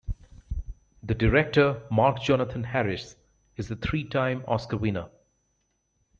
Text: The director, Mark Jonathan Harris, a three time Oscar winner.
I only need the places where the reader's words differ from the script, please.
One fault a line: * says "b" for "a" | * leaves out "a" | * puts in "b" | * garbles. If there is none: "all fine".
* puts in "is"